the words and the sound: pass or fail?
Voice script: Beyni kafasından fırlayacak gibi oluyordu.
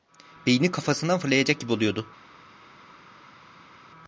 pass